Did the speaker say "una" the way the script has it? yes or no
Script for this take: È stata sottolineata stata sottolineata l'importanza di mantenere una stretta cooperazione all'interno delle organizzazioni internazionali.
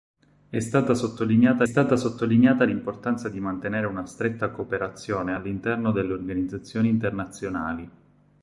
yes